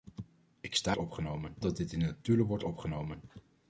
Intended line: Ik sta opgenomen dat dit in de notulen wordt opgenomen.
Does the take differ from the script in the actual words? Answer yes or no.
no